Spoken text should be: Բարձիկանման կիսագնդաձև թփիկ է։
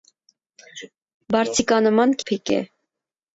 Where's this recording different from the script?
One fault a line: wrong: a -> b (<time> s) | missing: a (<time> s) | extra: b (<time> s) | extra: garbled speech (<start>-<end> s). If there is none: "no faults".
missing: կիսագնդաձև (2.2 s)